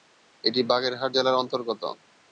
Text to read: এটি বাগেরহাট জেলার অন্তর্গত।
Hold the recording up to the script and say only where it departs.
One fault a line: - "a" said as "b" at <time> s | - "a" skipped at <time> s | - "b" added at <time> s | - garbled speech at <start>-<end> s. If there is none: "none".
none